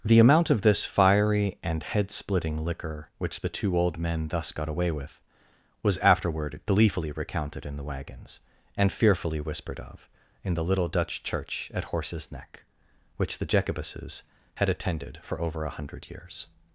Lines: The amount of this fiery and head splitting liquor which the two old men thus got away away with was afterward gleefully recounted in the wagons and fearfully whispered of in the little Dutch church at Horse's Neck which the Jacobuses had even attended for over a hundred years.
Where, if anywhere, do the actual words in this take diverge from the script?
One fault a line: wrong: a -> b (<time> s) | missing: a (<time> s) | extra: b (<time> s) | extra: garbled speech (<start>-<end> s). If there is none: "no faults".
missing: away (4.9 s)
missing: even (14.7 s)